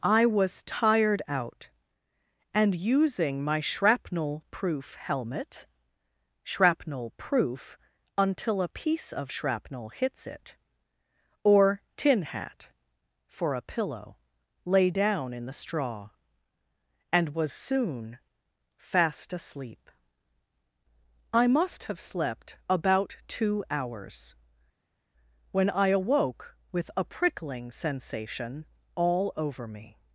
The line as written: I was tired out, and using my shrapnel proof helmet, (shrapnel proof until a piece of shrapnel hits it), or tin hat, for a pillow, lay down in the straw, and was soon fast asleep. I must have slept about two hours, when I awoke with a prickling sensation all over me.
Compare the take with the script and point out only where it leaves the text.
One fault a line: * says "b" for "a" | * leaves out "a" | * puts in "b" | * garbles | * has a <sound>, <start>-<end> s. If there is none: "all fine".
all fine